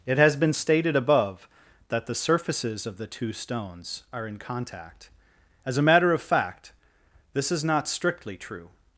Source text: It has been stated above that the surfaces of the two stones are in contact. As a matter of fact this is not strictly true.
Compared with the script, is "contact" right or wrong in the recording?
right